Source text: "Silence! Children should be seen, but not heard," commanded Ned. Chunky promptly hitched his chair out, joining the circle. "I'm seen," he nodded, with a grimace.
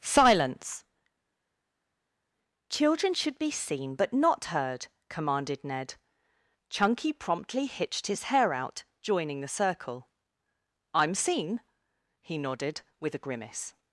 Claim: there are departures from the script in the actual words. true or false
true